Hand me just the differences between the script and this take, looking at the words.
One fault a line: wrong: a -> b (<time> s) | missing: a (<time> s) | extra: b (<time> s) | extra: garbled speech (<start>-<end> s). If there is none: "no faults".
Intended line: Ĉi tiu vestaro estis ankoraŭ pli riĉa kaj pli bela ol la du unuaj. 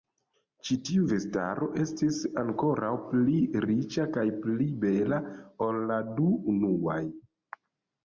no faults